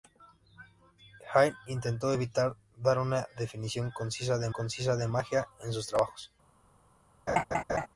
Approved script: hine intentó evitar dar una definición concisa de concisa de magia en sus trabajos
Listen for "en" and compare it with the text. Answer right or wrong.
right